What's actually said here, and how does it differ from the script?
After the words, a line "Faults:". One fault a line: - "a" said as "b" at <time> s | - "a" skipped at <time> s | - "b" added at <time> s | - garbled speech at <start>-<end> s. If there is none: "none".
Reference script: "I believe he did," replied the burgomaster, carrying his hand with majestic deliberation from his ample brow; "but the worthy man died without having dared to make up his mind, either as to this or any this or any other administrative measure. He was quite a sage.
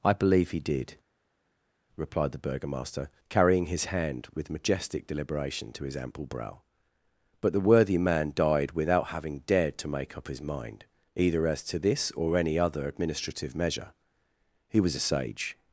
"I believe he did," replied the burgomaster, carrying his hand with majestic deliberation to his ample brow; "but the worthy man died without having dared to make up his mind, either as to this or any other administrative measure. He was a sage.
Faults:
- "from" said as "to" at 5.7 s
- "this or any" skipped at 12.6 s
- "quite" skipped at 14.9 s